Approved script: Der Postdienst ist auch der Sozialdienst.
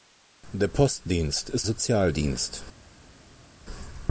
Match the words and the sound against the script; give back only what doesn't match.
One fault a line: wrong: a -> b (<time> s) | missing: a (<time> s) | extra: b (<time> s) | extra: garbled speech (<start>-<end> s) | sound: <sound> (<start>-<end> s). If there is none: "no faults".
missing: auch der (1.7 s)